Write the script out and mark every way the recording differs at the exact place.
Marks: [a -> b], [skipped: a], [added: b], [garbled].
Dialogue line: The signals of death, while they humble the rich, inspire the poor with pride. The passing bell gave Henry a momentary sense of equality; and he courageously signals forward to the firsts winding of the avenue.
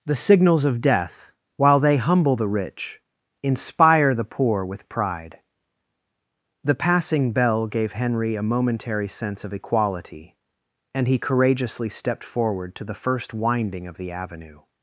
The signals of death, while they humble the rich, inspire the poor with pride. The passing bell gave Henry a momentary sense of equality; and he courageously [signals -> stepped] forward to the [firsts -> first] winding of the avenue.